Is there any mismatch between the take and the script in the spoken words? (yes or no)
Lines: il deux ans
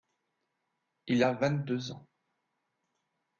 yes